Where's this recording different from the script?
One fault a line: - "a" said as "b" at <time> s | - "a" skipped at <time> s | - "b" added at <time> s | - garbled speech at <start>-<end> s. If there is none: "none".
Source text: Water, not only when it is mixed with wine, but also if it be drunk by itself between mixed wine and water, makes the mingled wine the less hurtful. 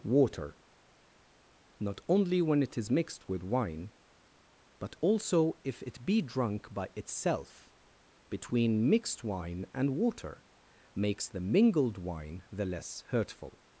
none